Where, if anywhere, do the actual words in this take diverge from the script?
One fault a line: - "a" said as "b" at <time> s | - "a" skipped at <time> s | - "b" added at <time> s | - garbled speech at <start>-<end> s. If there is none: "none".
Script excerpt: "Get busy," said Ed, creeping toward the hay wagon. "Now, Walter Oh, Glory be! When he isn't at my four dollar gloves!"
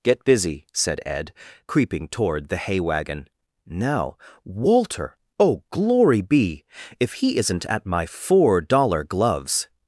- "When" said as "If" at 7.0 s